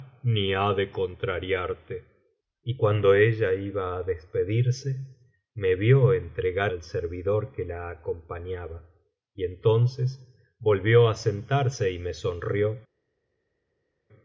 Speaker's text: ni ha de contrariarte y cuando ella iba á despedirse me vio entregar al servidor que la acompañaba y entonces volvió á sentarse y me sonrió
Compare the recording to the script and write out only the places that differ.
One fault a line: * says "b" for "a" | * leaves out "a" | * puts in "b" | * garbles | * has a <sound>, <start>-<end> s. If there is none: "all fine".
all fine